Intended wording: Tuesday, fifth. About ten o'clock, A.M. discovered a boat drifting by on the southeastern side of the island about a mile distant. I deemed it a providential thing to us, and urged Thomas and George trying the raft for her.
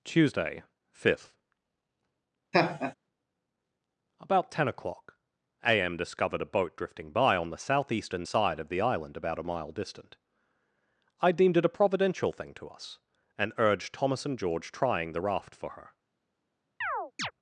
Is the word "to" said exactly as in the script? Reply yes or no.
yes